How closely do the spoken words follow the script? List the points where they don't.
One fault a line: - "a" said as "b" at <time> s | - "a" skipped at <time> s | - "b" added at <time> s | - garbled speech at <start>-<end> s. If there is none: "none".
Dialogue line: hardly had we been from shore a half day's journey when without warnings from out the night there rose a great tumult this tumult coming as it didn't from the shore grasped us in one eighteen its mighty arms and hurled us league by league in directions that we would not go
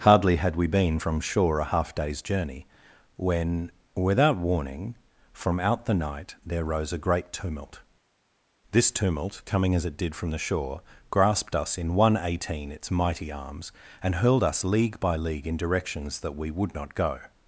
- "warnings" said as "warning" at 4.4 s
- "didn't" said as "did" at 10.0 s